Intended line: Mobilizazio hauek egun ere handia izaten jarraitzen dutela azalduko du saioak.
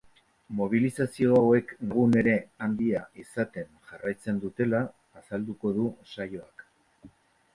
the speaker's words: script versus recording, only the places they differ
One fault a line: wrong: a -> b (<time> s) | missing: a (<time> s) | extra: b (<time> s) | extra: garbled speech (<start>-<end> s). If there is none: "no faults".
no faults